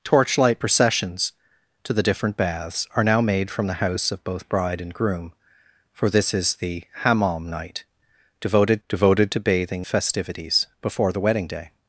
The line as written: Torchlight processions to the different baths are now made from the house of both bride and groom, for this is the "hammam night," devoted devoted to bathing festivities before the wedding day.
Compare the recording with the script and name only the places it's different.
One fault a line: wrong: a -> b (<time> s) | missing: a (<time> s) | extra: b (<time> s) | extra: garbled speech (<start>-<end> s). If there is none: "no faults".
no faults